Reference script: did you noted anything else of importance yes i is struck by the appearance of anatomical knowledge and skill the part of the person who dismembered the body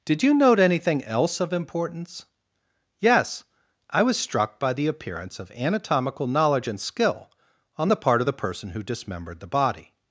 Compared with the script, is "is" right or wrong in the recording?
wrong